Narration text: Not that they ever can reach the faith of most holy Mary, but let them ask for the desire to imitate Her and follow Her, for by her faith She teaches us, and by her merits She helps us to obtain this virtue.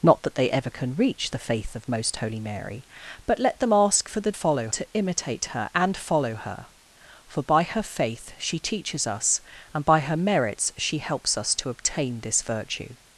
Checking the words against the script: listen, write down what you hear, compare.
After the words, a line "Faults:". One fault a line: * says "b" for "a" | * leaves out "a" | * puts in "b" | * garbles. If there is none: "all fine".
Not that they ever can reach the faith of most holy Mary, but let them ask for the follow to imitate Her and follow Her, for by her faith She teaches us, and by her merits She helps us to obtain this virtue.
Faults:
* says "follow" for "desire"